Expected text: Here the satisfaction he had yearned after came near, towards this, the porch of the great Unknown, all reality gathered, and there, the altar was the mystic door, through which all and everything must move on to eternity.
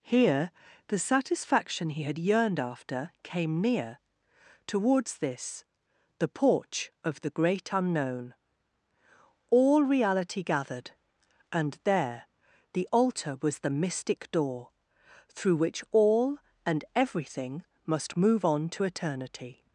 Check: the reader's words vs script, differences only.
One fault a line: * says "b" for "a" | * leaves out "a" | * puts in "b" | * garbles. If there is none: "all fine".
all fine